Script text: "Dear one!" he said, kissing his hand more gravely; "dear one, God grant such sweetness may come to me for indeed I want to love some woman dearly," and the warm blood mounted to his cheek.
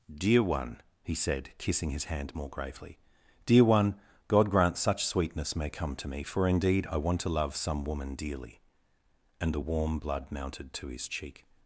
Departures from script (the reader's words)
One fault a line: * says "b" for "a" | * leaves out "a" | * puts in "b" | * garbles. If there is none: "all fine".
all fine